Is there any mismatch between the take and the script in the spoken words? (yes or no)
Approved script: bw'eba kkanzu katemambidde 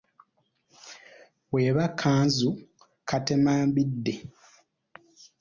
no